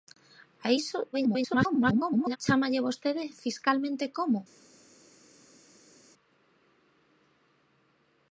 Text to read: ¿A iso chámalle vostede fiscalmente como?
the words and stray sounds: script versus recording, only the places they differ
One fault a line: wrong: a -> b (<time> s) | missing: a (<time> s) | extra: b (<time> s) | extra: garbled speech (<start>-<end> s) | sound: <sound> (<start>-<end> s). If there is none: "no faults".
extra: garbled speech (1.1-2.4 s)